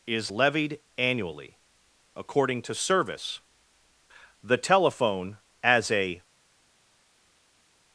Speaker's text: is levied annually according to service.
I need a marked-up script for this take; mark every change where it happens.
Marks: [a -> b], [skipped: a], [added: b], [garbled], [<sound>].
is levied annually according to service. [added: The telephone as a]